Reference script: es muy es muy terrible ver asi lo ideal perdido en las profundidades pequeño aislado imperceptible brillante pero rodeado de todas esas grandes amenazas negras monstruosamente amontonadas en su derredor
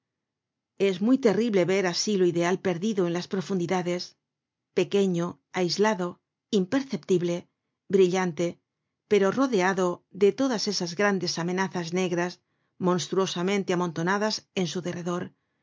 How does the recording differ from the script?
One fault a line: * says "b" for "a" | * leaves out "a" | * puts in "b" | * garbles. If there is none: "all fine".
* leaves out "es muy"